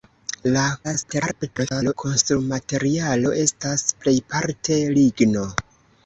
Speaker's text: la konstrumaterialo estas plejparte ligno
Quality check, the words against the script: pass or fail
fail